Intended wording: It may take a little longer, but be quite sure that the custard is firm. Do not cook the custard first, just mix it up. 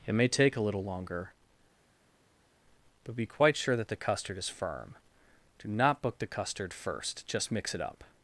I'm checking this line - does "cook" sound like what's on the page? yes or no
no